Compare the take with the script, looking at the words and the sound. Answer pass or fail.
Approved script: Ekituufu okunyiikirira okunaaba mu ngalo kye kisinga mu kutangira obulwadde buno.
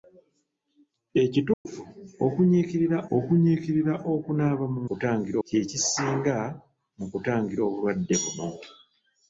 fail